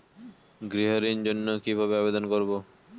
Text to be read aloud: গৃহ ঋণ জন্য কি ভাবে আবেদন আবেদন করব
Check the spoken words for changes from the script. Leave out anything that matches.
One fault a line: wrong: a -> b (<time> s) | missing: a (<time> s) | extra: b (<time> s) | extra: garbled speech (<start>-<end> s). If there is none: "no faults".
missing: আবেদন (2.2 s)